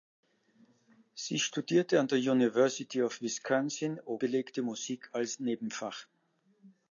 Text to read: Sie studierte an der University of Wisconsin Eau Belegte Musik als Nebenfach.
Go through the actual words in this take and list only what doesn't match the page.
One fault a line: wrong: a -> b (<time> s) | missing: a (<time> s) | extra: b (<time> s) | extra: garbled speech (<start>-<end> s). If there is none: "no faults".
no faults